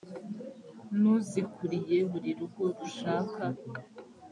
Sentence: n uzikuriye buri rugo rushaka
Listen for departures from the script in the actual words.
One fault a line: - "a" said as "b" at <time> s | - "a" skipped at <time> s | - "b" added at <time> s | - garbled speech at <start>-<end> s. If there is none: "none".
none